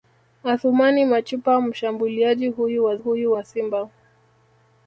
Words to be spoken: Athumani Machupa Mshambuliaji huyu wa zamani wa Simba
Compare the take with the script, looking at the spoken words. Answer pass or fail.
fail